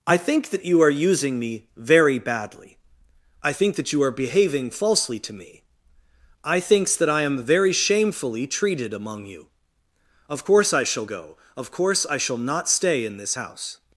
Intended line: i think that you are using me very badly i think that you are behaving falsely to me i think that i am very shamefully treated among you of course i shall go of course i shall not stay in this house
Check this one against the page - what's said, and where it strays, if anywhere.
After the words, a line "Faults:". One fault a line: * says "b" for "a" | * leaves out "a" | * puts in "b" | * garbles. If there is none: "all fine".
i think that you are using me very badly i think that you are behaving falsely to me i thinks that i am very shamefully treated among you of course i shall go of course i shall not stay in this house
Faults:
* says "thinks" for "think"